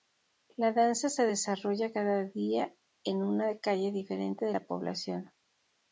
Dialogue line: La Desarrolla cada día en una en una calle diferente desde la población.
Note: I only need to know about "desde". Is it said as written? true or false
false